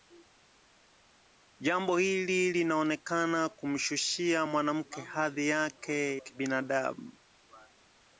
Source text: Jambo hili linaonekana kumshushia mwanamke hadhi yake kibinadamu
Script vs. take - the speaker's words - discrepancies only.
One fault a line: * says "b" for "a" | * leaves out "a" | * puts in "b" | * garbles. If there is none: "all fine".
all fine